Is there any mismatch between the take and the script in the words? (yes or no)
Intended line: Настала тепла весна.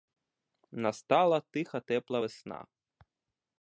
yes